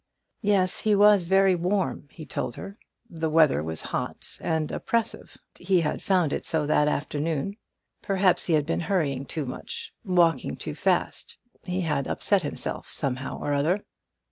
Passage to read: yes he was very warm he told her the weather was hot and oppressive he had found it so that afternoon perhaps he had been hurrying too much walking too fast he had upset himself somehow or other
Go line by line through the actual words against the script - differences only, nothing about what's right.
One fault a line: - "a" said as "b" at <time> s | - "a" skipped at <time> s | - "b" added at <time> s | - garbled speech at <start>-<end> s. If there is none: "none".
none